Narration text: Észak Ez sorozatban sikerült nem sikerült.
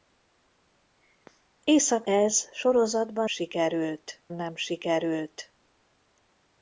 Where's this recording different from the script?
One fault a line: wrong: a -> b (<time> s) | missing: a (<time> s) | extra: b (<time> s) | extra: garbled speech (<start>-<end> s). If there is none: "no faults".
no faults